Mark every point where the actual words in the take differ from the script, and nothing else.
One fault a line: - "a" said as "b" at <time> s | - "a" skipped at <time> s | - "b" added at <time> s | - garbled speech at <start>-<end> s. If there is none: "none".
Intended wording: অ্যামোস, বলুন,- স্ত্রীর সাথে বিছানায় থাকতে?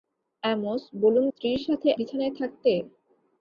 none